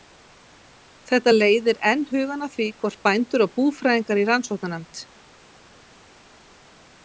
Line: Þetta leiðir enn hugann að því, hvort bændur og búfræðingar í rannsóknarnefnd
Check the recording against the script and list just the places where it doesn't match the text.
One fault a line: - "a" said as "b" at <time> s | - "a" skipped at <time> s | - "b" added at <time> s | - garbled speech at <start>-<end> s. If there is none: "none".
none